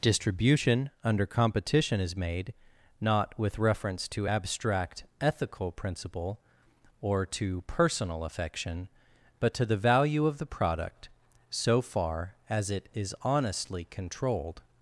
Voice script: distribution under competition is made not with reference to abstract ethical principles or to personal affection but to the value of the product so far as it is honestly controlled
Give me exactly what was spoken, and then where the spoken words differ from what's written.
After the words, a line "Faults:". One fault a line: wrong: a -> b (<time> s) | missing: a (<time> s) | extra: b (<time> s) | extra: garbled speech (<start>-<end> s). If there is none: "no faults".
distribution under competition is made not with reference to abstract ethical principle or to personal affection but to the value of the product so far as it is honestly controlled
Faults:
wrong: principles -> principle (5.7 s)